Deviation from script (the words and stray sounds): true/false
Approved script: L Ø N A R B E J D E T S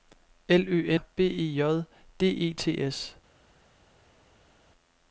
true